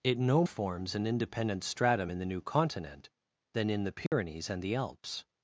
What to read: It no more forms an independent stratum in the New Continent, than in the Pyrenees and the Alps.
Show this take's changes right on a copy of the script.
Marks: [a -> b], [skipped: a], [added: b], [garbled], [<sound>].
It no [skipped: more] forms an independent stratum in the New Continent, than in the Pyrenees [dropout] and the Alps.